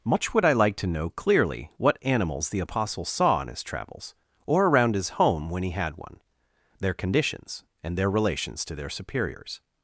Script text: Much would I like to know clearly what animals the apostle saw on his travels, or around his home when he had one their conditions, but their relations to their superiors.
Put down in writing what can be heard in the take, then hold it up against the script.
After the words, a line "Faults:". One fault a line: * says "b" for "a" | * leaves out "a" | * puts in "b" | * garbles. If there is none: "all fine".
Much would I like to know clearly what animals the apostle saw on his travels, or around his home when he had one their conditions, and their relations to their superiors.
Faults:
* says "and" for "but"